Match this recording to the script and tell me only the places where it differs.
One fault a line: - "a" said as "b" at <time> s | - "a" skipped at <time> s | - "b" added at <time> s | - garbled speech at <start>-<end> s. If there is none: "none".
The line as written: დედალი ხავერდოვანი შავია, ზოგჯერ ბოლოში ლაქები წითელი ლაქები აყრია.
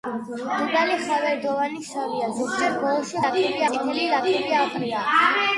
none